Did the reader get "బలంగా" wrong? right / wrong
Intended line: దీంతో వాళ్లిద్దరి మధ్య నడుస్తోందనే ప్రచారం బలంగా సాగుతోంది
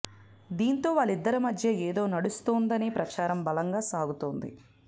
right